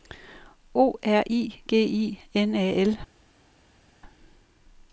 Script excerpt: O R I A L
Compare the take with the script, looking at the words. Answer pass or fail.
fail